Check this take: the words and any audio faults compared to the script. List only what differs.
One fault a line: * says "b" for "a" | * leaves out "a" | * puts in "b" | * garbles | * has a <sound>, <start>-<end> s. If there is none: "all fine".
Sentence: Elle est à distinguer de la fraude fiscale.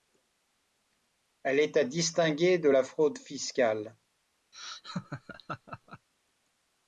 * has a laugh, 4.5-6.1 s